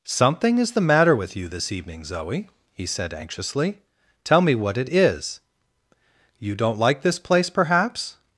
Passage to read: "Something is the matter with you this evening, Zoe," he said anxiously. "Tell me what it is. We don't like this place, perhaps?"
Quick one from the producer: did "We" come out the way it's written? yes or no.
no